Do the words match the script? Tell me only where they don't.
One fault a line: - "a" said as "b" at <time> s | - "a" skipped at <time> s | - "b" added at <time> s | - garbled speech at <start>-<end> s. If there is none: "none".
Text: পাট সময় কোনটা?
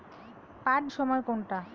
none